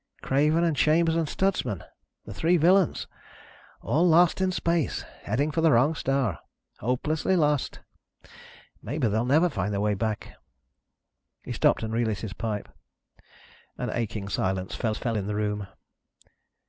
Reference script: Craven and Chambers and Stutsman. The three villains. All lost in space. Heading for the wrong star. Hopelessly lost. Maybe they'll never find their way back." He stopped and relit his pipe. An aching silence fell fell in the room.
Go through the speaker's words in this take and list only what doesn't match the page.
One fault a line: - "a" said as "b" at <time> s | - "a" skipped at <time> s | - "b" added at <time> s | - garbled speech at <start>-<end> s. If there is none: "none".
none